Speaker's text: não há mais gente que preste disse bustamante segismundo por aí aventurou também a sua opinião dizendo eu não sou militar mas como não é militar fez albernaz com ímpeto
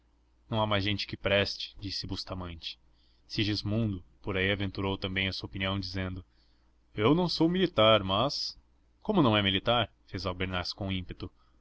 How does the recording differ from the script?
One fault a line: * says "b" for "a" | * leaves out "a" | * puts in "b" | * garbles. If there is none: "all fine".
all fine